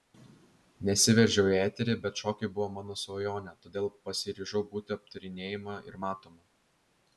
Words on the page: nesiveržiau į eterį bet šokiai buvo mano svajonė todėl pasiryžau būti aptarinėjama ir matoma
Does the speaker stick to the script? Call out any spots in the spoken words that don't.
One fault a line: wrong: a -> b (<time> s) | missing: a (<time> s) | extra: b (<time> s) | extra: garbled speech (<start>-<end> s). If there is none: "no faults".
no faults